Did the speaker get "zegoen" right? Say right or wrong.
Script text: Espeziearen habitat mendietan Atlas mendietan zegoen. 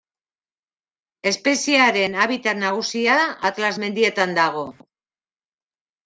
wrong